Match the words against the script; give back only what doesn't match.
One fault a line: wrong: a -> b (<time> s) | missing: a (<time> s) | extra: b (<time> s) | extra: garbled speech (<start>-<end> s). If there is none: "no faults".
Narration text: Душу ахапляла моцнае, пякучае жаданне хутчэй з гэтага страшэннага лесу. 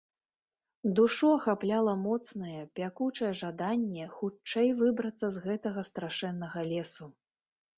extra: выбрацца (4.8 s)